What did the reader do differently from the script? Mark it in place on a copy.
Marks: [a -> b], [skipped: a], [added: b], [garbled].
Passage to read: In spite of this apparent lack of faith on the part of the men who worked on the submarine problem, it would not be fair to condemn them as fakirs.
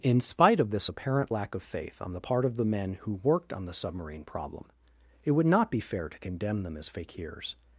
In spite of this apparent lack of faith on the part of the men who worked on the submarine problem, it would not be fair to condemn them as fakirs.